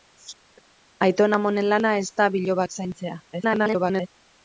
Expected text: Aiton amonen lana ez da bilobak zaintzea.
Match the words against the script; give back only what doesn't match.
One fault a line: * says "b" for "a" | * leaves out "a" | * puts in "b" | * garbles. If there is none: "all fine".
* garbles